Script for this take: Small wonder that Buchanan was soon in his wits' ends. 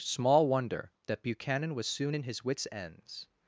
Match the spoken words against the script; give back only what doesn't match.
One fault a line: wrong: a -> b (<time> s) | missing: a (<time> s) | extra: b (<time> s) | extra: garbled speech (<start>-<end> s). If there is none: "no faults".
no faults